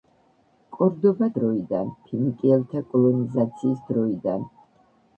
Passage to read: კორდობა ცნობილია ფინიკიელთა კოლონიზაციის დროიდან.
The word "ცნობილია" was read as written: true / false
false